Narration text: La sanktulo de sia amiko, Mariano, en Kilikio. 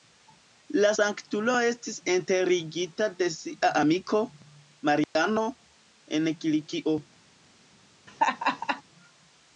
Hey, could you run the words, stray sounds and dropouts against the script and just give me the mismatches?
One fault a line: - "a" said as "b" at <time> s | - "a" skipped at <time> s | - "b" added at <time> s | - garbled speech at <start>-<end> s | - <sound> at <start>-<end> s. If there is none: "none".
- "estis enterigita" added at 1.7 s
- dropout at 5.0-5.2 s
- laugh at 8.1-8.8 s